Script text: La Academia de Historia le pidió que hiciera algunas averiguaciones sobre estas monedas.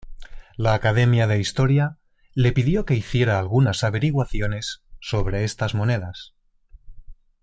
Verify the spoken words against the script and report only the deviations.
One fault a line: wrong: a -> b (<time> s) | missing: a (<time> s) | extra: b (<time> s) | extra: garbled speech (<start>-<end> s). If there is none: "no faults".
no faults